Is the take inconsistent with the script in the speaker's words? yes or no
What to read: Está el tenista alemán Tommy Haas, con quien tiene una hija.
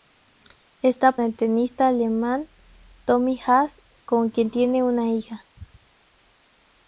no